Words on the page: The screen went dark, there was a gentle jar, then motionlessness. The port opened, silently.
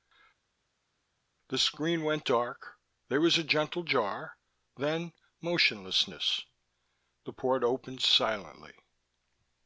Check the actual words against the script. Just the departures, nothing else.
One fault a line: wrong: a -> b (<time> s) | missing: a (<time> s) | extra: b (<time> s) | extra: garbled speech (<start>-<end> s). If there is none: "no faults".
no faults